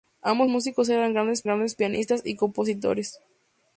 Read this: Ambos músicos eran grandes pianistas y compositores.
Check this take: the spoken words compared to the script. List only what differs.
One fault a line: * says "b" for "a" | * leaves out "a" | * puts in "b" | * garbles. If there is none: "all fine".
* puts in "grandes"